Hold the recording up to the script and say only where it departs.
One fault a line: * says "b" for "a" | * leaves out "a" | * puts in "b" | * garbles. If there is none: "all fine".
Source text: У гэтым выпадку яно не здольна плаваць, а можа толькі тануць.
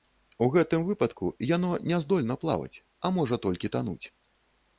all fine